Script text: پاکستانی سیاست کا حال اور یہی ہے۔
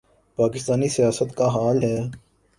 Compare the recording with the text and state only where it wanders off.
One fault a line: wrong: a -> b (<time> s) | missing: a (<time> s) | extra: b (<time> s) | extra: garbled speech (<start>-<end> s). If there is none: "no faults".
missing: اور یہی (1.8 s)